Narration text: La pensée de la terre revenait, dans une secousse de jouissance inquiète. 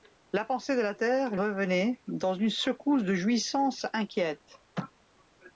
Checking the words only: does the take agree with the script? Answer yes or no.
yes